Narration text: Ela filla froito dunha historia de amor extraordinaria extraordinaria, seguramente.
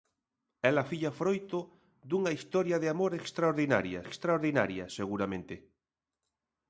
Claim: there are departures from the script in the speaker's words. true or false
false